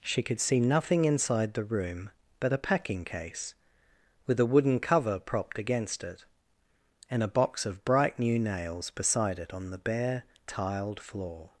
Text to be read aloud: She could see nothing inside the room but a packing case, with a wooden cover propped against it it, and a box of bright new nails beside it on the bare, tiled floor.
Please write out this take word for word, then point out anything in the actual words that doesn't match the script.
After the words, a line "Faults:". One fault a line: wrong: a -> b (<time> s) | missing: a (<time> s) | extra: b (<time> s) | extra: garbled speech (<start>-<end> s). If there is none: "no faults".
She could see nothing inside the room but a packing case, with a wooden cover propped against it, and a box of bright new nails beside it on the bare, tiled floor.
Faults:
missing: it (6.2 s)